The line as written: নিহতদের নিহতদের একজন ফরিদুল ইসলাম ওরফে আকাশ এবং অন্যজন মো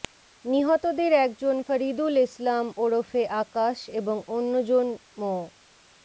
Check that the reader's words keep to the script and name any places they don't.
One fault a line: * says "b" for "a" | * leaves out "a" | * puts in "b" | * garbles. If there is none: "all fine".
* leaves out "নিহতদের"